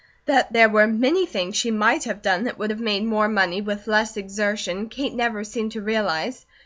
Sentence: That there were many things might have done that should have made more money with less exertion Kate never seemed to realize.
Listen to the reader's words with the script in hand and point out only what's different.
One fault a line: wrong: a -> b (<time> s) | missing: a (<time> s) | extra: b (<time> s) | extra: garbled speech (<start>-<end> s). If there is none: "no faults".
extra: she (1.6 s)
wrong: should -> would (2.6 s)